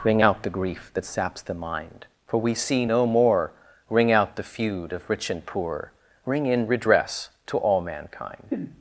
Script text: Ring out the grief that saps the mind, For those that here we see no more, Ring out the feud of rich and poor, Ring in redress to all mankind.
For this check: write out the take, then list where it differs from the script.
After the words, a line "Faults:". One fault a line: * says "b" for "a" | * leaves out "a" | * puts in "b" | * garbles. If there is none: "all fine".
Ring out the grief that saps the mind, For we see no more, Ring out the feud of rich and poor, Ring in redress to all mankind.
Faults:
* leaves out "those that here"